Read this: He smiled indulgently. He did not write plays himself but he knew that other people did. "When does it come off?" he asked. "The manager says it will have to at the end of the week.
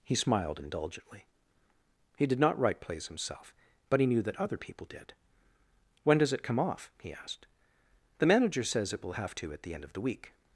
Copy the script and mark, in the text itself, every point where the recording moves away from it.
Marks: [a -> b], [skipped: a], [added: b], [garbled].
He smiled indulgently. He did not write plays himself but he knew that other people did. "When does it come off?" he asked. "The manager says it will have to at the end of the week.